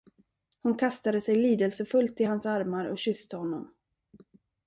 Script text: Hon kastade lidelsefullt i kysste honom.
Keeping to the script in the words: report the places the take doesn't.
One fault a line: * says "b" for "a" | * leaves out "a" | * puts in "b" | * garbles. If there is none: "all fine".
* puts in "sig"
* puts in "hans armar och"